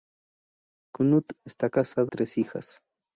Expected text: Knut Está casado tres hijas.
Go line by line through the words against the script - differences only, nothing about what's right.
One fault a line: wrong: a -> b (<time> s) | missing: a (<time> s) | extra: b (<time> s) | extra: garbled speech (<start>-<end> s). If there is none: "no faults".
no faults